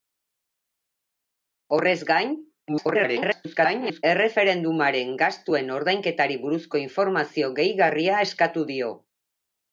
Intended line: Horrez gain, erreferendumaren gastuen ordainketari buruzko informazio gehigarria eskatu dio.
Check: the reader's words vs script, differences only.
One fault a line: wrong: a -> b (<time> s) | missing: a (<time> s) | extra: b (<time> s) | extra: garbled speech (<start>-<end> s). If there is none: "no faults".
extra: garbled speech (2.7-4.0 s)